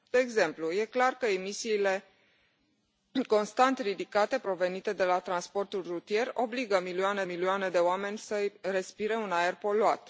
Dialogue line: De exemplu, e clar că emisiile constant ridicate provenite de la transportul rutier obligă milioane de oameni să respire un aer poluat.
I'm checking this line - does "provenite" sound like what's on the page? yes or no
yes